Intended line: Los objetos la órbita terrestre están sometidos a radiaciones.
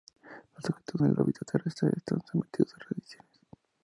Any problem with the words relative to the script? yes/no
no